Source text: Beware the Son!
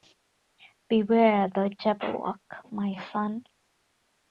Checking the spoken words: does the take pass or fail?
fail